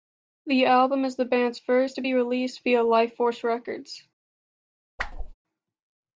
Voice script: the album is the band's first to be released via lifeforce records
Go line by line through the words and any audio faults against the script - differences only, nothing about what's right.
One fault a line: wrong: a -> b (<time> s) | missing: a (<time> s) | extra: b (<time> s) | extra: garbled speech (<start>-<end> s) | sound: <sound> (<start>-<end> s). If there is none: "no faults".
sound: whoosh (5.0-5.3 s)